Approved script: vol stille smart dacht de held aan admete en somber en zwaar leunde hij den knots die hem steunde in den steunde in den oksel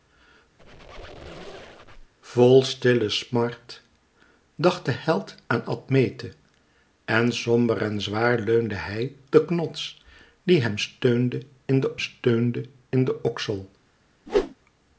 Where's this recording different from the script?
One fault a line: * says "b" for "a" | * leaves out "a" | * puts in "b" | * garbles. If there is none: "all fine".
all fine